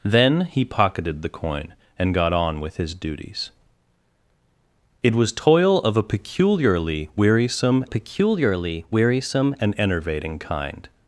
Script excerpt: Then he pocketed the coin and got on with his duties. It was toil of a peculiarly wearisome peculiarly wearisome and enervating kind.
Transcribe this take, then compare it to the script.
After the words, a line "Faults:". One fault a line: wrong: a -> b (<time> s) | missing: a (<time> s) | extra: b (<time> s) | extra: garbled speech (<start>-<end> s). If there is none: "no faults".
Then he pocketed the coin and got on with his duties. It was toil of a peculiarly wearisome peculiarly wearisome and enervating kind.
Faults:
no faults